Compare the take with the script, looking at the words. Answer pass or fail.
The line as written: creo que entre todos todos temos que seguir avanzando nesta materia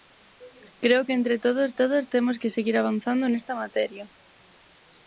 pass